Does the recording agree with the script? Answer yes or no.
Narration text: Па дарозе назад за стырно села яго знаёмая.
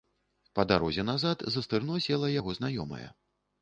yes